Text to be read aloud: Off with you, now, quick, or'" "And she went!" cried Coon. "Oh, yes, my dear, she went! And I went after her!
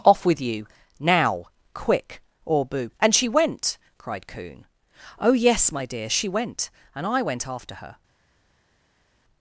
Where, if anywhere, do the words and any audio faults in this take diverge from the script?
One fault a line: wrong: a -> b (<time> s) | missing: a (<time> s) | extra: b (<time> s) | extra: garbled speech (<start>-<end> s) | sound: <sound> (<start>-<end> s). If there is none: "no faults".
extra: boo (2.6 s)